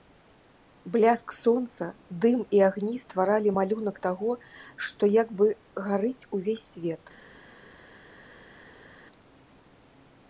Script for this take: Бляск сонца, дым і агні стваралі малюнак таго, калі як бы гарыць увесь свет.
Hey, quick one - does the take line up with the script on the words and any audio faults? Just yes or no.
no